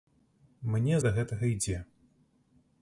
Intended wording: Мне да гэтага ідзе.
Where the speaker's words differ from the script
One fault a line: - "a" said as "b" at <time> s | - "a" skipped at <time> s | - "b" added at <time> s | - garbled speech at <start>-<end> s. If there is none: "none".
none